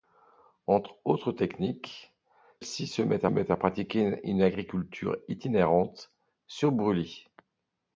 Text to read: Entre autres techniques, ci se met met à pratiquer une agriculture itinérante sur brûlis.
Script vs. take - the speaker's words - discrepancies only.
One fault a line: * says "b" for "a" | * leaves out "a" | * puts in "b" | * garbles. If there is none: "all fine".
all fine